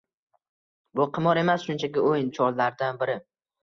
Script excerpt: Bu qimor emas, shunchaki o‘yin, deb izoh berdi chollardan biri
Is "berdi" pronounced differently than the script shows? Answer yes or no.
yes